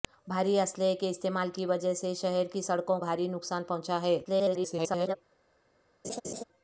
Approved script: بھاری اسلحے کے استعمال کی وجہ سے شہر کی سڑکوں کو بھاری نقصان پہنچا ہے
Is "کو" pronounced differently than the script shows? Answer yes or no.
yes